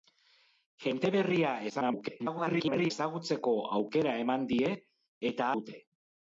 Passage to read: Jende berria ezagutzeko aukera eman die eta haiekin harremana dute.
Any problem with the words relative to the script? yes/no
yes